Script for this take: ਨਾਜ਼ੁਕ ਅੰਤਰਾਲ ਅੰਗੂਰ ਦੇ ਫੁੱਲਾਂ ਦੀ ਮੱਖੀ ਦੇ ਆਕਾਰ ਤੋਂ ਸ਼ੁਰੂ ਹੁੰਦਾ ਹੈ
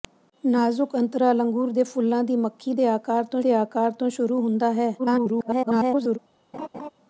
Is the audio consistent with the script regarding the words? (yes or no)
no